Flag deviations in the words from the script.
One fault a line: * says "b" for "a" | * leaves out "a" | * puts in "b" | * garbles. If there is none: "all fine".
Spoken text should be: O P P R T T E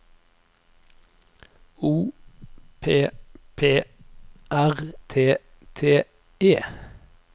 all fine